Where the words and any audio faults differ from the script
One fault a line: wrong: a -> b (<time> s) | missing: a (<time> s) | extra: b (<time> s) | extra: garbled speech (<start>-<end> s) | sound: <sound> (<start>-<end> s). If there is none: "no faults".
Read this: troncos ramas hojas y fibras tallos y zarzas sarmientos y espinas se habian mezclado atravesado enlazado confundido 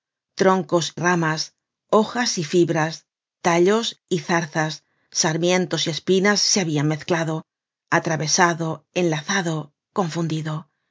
no faults